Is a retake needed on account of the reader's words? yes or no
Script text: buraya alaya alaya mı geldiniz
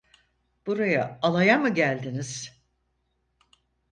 yes